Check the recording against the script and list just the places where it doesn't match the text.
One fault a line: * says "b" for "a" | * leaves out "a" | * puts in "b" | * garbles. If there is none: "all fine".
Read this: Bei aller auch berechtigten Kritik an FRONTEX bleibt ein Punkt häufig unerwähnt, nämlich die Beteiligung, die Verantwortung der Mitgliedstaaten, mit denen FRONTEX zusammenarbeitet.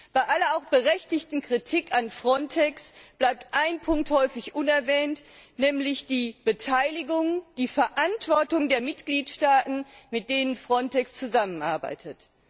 all fine